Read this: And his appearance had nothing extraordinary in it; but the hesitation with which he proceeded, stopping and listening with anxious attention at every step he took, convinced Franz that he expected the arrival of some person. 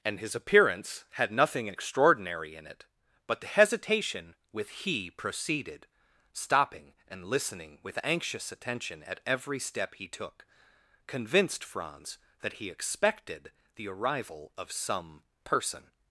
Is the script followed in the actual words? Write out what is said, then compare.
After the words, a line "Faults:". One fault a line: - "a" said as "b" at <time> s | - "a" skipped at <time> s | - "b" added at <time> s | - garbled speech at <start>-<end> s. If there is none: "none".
And his appearance had nothing extraordinary in it; but the hesitation with he proceeded, stopping and listening with anxious attention at every step he took, convinced Franz that he expected the arrival of some person.
Faults:
- "which" skipped at 4.7 s